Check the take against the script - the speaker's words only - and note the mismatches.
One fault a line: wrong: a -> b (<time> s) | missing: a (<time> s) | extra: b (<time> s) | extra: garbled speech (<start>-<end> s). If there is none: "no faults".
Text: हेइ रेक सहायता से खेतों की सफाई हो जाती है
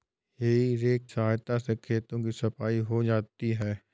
no faults